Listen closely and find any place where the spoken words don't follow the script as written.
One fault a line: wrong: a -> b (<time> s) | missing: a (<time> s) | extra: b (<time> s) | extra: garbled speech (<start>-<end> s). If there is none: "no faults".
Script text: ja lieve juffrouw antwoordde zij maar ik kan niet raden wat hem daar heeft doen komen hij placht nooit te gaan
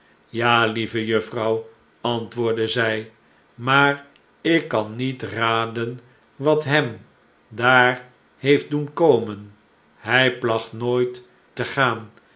no faults